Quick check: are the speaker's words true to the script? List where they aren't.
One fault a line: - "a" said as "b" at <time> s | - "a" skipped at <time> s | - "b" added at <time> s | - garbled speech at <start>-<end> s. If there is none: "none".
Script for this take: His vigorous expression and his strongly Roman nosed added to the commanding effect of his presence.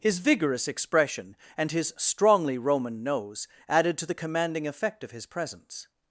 - "nosed" said as "nose" at 3.0 s